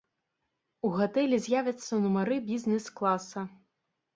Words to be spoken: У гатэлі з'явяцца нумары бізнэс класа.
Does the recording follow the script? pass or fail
pass